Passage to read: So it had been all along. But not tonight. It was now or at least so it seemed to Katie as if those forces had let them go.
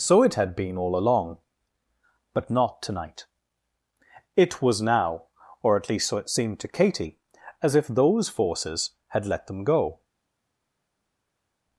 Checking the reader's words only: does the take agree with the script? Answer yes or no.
yes